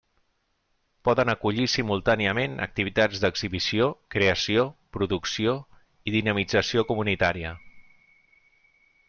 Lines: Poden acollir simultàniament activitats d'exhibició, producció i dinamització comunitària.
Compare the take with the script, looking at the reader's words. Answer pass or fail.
fail